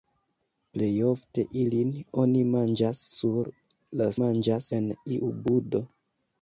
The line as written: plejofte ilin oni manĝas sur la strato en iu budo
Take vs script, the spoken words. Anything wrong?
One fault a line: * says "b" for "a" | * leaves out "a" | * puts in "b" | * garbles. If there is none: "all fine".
* says "manĝas" for "strato"